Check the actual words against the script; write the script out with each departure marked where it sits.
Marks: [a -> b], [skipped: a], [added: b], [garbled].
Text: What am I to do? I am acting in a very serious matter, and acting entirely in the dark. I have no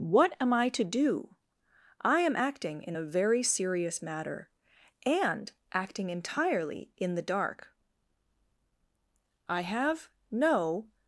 What am I to do? I am acting in a very serious matter, and acting entirely in the dark. I have no